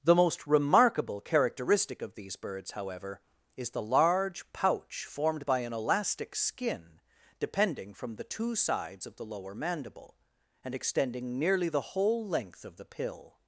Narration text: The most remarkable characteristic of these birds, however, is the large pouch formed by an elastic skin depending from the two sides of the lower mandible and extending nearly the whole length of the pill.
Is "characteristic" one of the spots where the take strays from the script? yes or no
no